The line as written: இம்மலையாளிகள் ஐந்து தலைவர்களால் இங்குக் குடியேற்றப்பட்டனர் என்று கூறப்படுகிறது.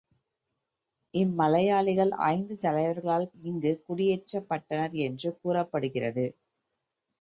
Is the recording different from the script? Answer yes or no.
no